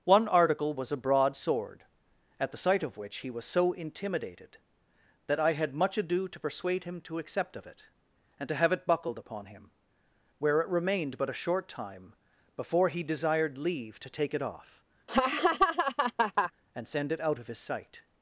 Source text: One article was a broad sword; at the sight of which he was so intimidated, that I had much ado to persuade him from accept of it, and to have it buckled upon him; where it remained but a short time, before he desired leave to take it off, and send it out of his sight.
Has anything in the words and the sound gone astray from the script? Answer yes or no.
yes